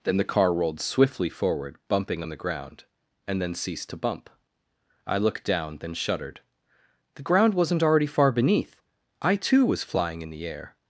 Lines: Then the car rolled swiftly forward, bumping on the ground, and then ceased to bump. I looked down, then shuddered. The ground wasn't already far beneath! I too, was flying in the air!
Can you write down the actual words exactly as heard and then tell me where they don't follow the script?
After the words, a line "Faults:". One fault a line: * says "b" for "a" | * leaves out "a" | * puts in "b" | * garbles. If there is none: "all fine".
Then the car rolled swiftly forward, bumping on the ground, and then ceased to bump. I looked down, then shuddered. The ground wasn't already far beneath! I too, was flying in the air!
Faults:
all fine